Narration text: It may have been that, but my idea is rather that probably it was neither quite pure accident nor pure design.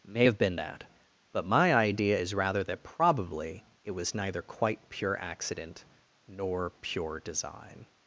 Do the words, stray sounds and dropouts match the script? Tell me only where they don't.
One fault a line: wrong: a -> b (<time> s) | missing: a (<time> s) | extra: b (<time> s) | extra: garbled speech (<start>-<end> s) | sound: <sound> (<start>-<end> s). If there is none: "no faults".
missing: It (0.1 s)